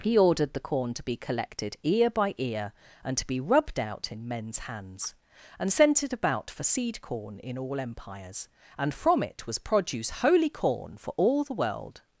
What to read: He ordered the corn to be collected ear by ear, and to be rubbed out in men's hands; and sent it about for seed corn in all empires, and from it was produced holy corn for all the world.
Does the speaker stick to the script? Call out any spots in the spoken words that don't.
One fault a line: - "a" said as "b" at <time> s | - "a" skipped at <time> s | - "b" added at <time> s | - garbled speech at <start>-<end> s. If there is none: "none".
- "produced" said as "produce" at 9.6 s